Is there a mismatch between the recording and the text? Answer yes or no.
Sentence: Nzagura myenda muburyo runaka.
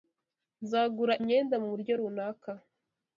no